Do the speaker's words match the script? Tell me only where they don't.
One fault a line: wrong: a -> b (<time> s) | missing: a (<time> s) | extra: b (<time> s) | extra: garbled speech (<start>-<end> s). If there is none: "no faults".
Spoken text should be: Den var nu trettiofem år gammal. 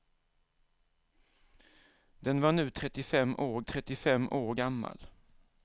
extra: trettiofem år (3.6 s)